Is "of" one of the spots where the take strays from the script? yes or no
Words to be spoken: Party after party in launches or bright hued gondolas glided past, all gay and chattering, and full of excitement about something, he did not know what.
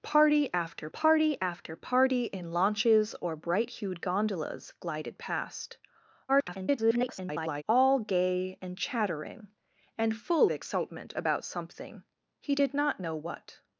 yes